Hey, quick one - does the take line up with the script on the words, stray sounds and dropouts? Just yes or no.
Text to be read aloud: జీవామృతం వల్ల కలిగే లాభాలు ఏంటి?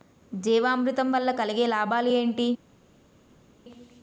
yes